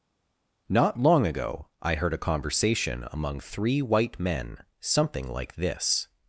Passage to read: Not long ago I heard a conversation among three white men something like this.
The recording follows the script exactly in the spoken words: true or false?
true